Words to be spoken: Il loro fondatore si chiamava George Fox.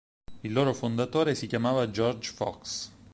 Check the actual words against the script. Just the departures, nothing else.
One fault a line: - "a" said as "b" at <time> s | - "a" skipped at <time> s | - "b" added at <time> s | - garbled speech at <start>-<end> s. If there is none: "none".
none